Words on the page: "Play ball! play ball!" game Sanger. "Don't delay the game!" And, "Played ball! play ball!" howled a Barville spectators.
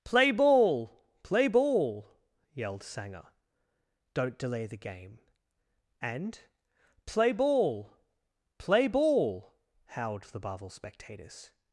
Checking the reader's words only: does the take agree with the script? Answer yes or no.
no